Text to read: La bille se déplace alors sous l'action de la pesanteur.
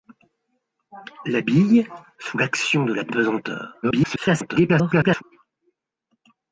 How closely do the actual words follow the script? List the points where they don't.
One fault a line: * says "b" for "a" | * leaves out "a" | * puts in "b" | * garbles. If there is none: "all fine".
* leaves out "se déplace alors"
* garbles